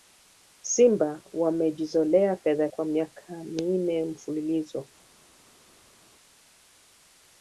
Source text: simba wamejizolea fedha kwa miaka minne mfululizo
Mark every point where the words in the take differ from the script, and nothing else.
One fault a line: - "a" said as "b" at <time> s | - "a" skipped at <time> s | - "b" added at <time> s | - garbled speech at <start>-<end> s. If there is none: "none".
none